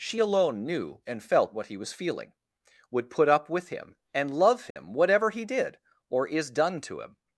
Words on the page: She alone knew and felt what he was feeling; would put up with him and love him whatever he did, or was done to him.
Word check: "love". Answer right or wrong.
right